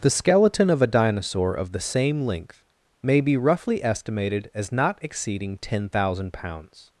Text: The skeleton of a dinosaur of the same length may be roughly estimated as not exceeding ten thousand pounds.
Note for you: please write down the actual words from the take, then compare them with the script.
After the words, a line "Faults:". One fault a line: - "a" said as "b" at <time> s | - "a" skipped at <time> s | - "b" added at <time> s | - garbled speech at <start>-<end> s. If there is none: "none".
The skeleton of a dinosaur of the same length may be roughly estimated as not exceeding ten thousand pounds.
Faults:
none